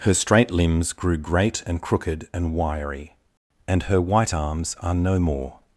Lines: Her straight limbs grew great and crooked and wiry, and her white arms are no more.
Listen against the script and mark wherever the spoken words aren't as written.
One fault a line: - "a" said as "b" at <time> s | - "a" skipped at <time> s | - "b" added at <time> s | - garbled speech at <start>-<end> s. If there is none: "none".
none